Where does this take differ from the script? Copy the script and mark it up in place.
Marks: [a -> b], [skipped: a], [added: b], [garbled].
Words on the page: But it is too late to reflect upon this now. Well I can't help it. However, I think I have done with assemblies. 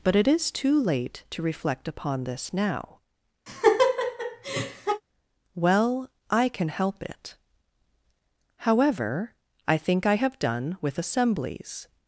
But it is too late to reflect upon this now. Well I [can't -> can] help it. However, I think I have done with assemblies.